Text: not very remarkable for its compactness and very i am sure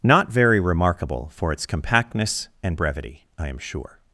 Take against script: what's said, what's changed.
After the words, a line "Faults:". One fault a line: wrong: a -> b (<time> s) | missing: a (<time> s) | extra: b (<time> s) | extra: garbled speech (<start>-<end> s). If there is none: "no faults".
not very remarkable for its compactness and brevity i am sure
Faults:
wrong: very -> brevity (2.7 s)